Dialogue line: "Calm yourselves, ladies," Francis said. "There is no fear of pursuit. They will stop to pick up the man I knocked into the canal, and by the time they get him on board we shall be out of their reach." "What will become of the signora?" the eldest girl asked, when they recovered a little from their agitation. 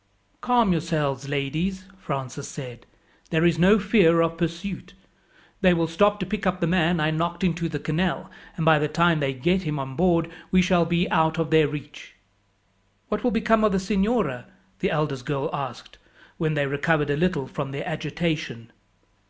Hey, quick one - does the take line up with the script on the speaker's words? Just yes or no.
yes